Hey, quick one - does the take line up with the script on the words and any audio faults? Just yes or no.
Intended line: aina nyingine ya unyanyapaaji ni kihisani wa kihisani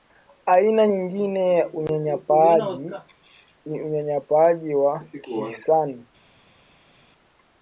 no